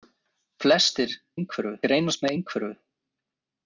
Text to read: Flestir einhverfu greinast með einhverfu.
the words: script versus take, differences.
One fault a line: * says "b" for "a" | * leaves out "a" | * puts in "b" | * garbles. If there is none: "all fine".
all fine